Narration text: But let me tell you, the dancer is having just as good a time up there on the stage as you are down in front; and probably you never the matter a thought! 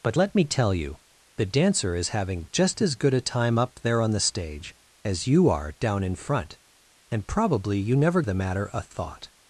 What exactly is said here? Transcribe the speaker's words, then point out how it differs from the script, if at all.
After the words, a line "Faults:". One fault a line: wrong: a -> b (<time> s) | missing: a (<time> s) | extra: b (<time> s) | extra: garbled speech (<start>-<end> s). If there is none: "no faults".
But let me tell you, the dancer is having just as good a time up there on the stage as you are down in front; and probably you never the matter a thought!
Faults:
no faults